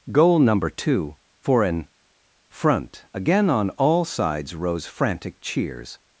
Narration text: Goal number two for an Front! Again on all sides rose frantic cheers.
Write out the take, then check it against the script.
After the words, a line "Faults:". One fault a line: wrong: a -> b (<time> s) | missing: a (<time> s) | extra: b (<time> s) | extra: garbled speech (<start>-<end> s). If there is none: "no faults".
Goal number two for an Front! Again on all sides rose frantic cheers.
Faults:
no faults